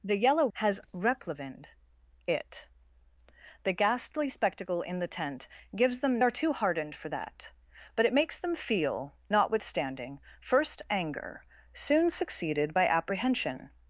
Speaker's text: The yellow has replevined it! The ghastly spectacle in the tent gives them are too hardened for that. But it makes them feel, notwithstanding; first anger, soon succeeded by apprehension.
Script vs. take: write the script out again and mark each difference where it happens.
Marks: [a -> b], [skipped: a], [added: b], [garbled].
The yellow has replevined it! The ghastly spectacle in the tent gives them are too hardened for that. But it makes them feel, notwithstanding; first anger, soon succeeded by apprehension.